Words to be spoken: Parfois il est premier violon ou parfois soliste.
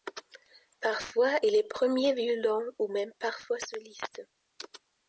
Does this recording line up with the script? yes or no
no